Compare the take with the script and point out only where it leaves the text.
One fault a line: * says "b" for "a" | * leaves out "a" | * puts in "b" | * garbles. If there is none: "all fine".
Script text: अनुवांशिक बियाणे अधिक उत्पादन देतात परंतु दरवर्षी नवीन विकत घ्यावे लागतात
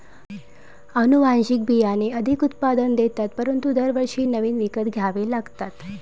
all fine